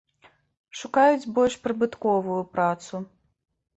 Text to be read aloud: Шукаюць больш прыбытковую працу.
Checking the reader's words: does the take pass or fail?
pass